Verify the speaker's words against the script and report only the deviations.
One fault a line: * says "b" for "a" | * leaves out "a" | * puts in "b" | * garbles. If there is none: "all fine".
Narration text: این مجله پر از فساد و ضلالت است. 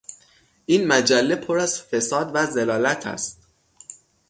all fine